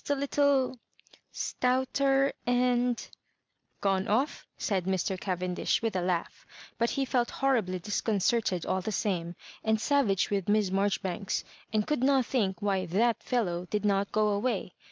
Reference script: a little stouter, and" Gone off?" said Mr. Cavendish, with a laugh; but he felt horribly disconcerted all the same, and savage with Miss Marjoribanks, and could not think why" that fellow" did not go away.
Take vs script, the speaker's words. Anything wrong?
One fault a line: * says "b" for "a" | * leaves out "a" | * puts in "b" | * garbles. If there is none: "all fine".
all fine